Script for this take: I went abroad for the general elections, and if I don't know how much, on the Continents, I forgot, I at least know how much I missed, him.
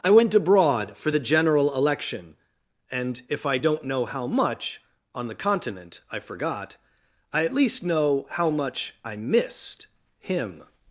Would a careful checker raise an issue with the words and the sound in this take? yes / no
yes